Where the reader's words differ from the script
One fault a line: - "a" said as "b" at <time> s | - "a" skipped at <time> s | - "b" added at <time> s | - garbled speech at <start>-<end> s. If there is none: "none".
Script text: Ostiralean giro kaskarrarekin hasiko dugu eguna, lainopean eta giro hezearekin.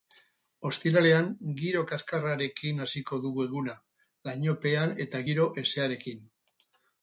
none